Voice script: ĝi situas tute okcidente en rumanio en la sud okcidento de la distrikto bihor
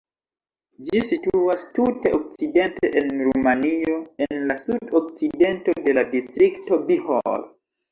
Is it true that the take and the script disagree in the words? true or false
false